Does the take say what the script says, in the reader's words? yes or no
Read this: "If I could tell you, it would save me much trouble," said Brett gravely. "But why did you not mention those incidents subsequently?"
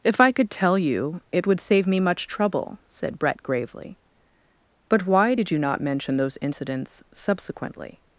yes